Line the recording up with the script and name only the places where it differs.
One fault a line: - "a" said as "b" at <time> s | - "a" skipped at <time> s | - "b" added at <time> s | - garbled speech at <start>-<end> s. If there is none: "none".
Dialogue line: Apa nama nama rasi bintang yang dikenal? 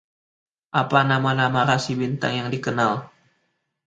none